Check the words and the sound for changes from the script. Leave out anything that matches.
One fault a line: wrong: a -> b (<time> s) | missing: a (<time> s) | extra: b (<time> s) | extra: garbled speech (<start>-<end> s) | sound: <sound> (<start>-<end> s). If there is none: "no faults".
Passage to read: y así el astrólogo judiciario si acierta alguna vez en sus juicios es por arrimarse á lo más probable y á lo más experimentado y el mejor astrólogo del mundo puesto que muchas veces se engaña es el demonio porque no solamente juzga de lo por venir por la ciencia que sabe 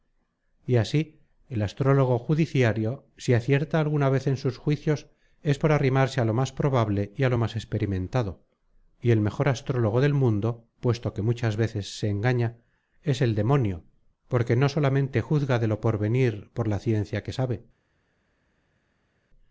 no faults